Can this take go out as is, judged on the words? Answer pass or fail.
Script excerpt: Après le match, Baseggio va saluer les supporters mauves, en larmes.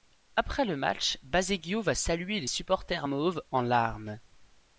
pass